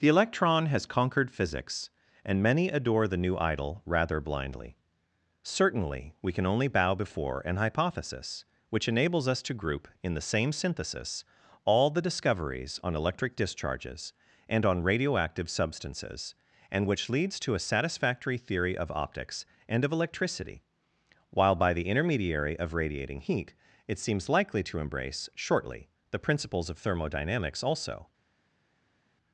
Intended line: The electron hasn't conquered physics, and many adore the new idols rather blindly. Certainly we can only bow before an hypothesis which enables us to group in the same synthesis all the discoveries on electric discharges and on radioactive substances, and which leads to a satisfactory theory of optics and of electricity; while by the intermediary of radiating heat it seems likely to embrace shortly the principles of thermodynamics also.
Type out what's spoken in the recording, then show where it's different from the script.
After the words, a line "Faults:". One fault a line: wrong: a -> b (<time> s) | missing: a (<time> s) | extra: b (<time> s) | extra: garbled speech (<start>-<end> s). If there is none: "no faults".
The electron has conquered physics, and many adore the new idol rather blindly. Certainly we can only bow before an hypothesis which enables us to group in the same synthesis all the discoveries on electric discharges and on radioactive substances, and which leads to a satisfactory theory of optics and of electricity; while by the intermediary of radiating heat it seems likely to embrace shortly the principles of thermodynamics also.
Faults:
wrong: hasn't -> has (0.7 s)
wrong: idols -> idol (3.4 s)